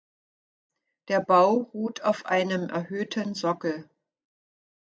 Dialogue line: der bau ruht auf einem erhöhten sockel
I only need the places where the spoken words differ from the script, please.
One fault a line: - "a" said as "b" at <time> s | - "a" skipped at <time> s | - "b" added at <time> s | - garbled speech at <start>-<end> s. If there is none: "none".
none